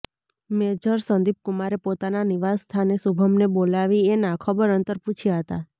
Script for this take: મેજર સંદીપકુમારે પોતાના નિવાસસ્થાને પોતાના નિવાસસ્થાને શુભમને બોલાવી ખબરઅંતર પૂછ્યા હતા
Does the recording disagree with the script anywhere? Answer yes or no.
yes